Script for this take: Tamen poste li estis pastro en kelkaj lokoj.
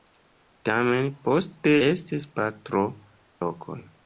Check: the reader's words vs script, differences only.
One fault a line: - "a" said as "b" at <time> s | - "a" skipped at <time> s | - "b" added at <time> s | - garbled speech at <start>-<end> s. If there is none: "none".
- "li" skipped at 1.7 s
- "en kelkaj" skipped at 2.9 s